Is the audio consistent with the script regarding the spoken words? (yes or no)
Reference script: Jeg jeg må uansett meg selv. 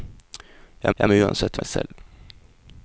yes